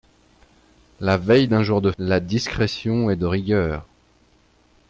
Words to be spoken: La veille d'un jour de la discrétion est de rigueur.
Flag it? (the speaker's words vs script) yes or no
no